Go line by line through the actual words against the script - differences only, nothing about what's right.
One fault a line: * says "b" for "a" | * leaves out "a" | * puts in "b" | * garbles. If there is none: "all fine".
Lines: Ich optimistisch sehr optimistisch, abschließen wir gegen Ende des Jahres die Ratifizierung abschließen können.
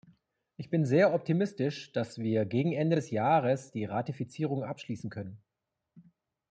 * says "bin" for "optimistisch"
* says "dass" for "abschließen"